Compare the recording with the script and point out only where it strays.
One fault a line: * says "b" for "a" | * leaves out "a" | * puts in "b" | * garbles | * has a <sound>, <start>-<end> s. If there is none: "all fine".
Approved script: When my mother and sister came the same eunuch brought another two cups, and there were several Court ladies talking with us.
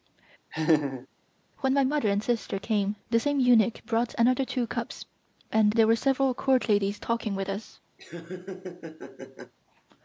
* has a laugh, 0.5-1.1 s
* has a laugh, 8.0-9.5 s